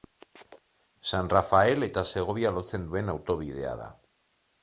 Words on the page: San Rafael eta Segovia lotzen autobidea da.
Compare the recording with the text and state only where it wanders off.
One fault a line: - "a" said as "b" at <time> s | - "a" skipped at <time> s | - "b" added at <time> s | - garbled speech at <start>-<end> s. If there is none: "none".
- "duen" added at 2.9 s